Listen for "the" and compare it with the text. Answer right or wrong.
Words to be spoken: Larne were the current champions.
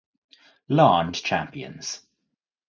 wrong